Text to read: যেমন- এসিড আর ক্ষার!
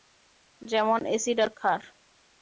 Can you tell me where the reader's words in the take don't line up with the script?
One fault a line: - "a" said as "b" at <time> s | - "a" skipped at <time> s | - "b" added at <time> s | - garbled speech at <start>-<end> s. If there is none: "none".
none